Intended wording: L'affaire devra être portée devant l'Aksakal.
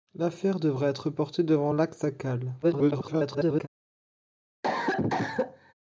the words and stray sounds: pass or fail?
fail